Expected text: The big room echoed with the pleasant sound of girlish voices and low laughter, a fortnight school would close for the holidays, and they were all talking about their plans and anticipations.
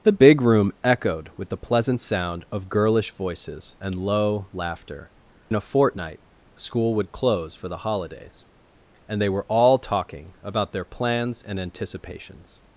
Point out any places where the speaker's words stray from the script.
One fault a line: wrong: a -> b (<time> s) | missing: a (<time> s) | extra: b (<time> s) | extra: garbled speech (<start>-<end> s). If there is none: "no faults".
no faults